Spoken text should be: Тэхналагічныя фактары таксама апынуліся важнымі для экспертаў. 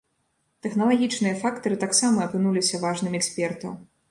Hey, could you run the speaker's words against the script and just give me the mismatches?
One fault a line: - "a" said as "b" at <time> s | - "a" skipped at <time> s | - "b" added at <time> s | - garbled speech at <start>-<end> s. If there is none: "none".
- "для" skipped at 3.2 s